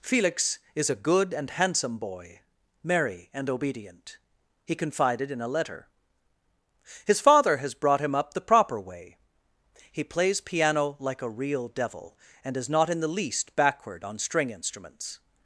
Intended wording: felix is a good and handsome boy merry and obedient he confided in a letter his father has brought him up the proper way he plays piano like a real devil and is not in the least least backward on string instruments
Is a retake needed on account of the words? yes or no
yes